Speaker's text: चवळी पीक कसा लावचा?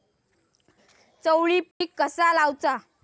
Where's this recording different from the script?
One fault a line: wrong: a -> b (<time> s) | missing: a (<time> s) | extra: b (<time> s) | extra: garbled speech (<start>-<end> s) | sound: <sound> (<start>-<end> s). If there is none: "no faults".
sound: dropout (1.7-1.8 s)